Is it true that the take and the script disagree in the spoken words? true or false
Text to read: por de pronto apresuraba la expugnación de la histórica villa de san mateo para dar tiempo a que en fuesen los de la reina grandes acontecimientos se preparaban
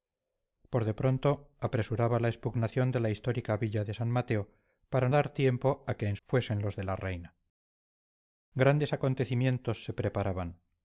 false